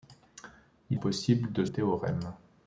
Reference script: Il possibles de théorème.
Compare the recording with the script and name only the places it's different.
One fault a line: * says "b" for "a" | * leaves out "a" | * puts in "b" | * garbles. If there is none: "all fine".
all fine